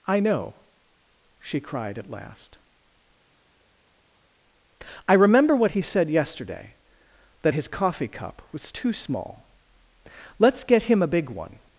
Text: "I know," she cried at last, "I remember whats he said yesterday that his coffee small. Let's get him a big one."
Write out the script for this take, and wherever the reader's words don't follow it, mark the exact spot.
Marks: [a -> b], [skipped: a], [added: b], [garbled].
"I know," she cried at last, "I remember [whats -> what] he said yesterday that his coffee [added: cup was too] small. Let's get him a big one."